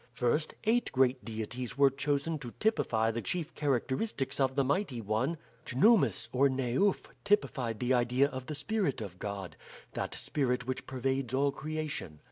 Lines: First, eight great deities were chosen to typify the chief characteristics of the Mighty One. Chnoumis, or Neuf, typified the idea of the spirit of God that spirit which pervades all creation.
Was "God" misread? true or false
false